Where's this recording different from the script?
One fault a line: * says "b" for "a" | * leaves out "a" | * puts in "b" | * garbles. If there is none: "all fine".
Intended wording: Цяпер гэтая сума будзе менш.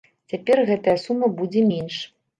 all fine